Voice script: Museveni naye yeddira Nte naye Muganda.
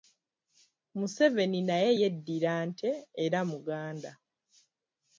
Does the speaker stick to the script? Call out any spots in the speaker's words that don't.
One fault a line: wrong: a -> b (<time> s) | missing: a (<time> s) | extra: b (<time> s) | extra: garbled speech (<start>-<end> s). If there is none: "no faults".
wrong: naye -> era (3.2 s)